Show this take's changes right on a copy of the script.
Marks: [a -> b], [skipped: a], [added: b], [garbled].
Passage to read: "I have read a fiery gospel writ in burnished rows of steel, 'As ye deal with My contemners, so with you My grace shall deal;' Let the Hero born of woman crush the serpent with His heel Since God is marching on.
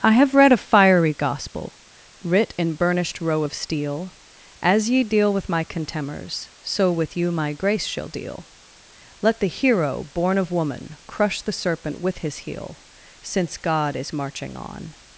"I have read a fiery gospel writ in burnished [rows -> row] of steel, 'As ye deal with My contemners, so with you My grace shall deal;' Let the Hero born of woman crush the serpent with His heel Since God is marching on.